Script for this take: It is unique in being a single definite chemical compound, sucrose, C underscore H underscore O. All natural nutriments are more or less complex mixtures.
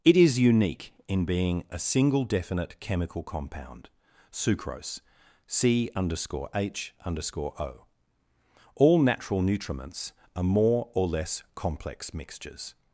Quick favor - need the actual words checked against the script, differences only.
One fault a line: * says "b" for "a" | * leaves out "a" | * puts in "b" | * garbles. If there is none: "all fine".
all fine